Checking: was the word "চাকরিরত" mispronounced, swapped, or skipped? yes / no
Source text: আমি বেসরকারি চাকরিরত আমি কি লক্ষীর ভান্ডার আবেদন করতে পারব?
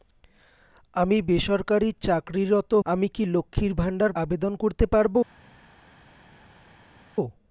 no